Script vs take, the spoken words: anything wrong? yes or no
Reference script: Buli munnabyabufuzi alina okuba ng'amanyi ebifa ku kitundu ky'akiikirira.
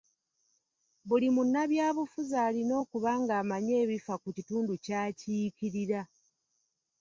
no